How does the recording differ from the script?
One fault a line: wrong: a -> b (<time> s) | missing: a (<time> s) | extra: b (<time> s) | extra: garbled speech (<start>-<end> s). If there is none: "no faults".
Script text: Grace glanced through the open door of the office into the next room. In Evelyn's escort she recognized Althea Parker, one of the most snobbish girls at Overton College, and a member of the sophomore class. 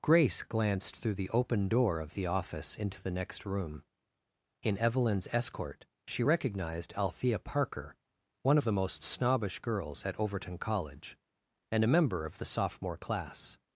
no faults